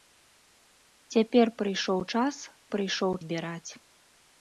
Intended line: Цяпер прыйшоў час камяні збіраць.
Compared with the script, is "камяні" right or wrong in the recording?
wrong